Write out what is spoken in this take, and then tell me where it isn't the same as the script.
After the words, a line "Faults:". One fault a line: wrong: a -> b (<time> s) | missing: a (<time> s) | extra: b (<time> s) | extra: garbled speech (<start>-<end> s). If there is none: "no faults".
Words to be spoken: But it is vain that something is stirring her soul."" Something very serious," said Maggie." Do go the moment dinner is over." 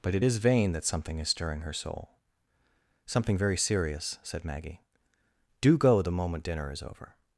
But it is vain that something is stirring her soul."" Something very serious," said Maggie." Do go the moment dinner is over."
Faults:
no faults